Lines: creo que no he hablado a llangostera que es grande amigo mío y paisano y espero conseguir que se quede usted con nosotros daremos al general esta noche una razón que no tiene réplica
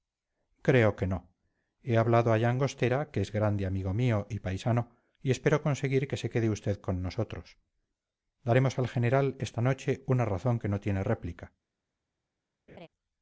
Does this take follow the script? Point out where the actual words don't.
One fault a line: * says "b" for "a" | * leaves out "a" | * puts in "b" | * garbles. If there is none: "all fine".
all fine